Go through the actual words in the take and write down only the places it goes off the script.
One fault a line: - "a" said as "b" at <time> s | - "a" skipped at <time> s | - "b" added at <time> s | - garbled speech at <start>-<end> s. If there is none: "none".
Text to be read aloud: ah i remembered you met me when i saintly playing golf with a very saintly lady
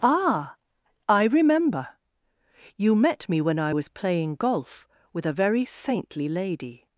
- "remembered" said as "remember" at 1.2 s
- "saintly" said as "was" at 3.7 s